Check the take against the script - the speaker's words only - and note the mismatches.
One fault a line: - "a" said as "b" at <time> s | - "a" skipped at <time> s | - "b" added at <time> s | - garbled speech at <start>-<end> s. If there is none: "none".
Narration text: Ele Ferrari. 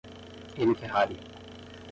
none